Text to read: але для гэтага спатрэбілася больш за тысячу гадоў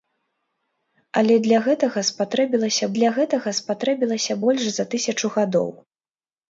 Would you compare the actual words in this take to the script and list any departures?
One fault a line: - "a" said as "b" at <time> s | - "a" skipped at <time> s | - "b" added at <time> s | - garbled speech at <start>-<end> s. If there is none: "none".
- "для гэтага спатрэбілася" added at 3.0 s